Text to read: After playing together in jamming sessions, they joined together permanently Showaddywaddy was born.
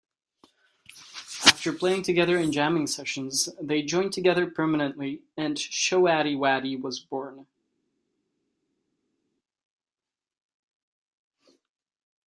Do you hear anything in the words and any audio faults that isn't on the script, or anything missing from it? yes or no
yes